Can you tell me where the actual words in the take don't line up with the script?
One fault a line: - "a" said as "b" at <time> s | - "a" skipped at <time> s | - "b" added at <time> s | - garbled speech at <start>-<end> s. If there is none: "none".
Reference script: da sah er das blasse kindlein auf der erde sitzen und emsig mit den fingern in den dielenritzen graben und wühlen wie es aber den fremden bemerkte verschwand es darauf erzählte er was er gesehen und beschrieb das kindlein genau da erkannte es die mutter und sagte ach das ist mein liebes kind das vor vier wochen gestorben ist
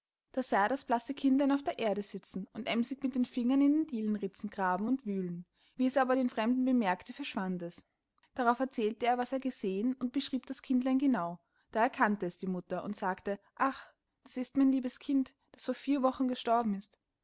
none